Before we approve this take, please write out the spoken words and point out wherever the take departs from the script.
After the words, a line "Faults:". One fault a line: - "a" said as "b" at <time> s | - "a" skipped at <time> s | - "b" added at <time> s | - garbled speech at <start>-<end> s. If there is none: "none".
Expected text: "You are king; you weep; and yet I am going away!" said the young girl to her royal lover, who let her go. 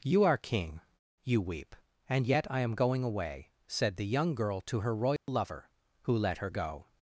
"You are king; you weep; and yet I am going away!" said the young girl to her royal lover, who let her go.
Faults:
none